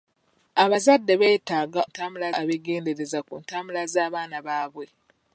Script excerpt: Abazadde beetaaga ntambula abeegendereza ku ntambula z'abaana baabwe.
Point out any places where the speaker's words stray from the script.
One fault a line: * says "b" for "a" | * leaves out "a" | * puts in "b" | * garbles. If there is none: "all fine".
all fine